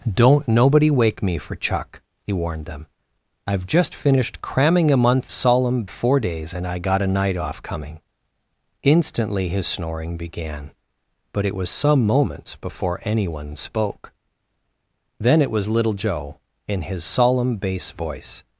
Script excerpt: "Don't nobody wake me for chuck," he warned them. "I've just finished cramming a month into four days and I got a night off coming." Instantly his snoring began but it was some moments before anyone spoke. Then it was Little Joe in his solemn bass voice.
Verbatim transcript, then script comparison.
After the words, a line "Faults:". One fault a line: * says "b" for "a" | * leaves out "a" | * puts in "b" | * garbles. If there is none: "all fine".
"Don't nobody wake me for chuck," he warned them. "I've just finished cramming a month solemn four days and I got a night off coming." Instantly his snoring began but it was some moments before anyone spoke. Then it was Little Joe in his solemn bass voice.
Faults:
* says "solemn" for "into"